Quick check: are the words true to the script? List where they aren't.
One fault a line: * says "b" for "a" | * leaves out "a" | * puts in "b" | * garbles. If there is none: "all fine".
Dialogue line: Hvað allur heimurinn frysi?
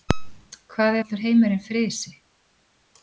all fine